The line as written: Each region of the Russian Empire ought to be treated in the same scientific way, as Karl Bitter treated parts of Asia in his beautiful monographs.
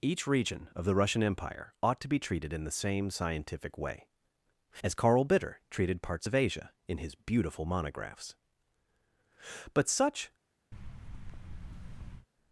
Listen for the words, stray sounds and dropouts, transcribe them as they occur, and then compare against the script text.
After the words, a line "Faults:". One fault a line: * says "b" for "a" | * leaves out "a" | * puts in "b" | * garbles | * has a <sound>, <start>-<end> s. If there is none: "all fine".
Each region of the Russian Empire ought to be treated in the same scientific way, as Karl Bitter treated parts of Asia in his beautiful monographs. But such
Faults:
* puts in "But such"
* has a thud, 10.7-12.3 s